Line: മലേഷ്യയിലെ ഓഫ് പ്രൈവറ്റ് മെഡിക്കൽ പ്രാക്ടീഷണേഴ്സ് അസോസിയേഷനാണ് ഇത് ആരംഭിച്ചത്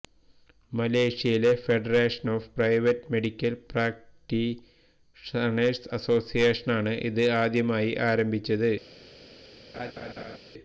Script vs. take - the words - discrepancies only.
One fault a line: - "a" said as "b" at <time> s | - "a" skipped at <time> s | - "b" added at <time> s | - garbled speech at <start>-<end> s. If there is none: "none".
- "ഫെഡറേഷൻ" added at 1.6 s
- "ആദ്യമായി" added at 7.4 s